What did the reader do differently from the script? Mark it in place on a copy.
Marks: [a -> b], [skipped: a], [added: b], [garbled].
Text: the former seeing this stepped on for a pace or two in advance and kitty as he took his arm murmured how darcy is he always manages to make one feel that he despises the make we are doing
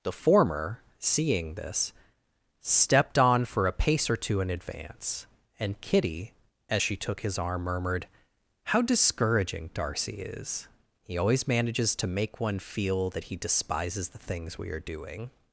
the former seeing this stepped on for a pace or two in advance and kitty as [he -> she] took his arm murmured how [added: discouraging] darcy is he always manages to make one feel that he despises the [make -> things] we are doing